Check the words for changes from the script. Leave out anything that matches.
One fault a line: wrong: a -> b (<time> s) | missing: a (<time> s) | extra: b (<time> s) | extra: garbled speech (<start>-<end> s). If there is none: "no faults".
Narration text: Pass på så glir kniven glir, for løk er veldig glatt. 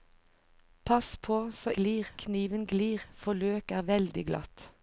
no faults